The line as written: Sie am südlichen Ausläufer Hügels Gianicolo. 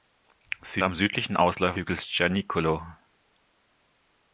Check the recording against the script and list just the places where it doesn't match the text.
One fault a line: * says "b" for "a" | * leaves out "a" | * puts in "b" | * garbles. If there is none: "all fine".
all fine